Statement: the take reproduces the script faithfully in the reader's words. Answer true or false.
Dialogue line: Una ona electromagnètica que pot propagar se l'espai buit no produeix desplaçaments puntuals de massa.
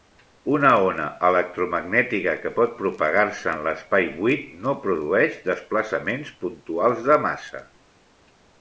false